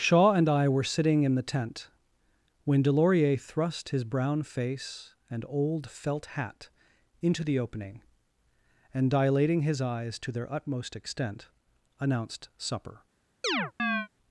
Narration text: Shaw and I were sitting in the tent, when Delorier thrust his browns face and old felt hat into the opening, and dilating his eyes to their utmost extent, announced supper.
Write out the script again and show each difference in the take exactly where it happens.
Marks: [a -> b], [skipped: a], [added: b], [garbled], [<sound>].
Shaw and I were sitting in the tent, when Delorier thrust his [browns -> brown] face and old felt hat into the opening, and dilating his eyes to their utmost extent, announced supper. [chirp]